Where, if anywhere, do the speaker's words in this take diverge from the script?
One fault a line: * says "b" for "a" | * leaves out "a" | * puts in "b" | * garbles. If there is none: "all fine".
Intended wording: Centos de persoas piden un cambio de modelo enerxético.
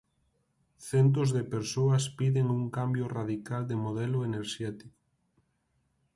* puts in "radical"